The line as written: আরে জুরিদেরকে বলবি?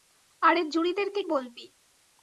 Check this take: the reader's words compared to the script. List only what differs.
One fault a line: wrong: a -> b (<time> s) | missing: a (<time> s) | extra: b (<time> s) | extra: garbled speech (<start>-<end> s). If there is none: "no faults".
no faults